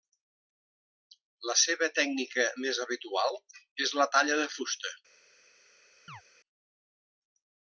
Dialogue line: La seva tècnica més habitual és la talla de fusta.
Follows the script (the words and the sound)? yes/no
no